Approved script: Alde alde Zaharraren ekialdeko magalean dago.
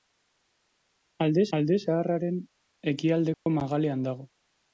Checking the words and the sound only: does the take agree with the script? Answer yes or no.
no